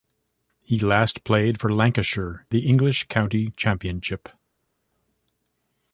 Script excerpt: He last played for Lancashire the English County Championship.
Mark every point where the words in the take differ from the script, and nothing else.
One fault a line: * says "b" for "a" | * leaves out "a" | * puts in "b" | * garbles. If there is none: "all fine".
all fine